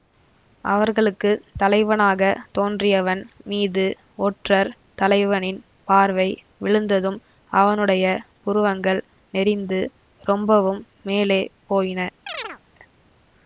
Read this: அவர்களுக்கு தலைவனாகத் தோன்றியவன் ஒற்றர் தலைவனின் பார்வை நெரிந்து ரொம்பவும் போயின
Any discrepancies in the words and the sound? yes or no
yes